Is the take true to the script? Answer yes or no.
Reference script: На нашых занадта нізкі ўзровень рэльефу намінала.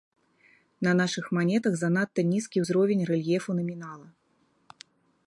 no